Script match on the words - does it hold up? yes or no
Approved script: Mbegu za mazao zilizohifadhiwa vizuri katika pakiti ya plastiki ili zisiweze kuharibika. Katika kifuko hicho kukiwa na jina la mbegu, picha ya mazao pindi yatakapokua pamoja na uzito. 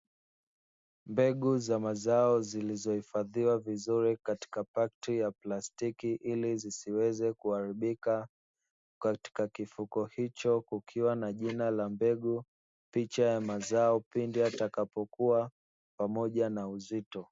yes